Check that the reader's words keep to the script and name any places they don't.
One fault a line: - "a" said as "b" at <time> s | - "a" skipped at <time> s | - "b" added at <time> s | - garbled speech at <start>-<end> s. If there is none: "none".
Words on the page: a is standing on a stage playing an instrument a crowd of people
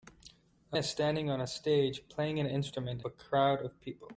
none